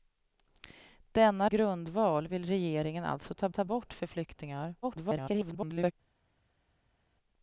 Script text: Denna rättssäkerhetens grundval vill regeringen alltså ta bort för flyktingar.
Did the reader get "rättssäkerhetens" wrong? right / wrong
wrong